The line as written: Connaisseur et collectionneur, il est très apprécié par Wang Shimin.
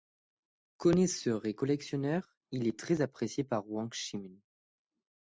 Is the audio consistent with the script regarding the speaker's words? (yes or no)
yes